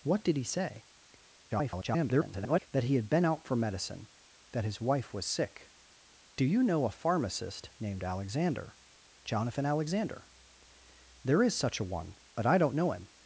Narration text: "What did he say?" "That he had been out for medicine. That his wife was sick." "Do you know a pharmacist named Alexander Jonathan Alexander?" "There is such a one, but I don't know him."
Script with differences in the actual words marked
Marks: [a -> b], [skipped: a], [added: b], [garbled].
"What did he say?" [garbled] "That he had been out for medicine. That his wife was sick." "Do you know a pharmacist named Alexander Jonathan Alexander?" "There is such a one, but I don't know him."